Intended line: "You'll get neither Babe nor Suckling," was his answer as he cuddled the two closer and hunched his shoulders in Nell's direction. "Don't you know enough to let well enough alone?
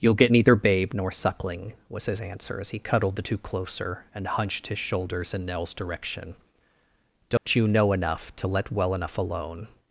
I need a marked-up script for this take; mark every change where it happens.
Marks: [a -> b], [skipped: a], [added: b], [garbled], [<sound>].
"You'll get neither Babe nor Suckling," was his answer as he cuddled the two closer and hunched his shoulders in Nell's direction. "Don't [dropout] you know enough to let well enough alone?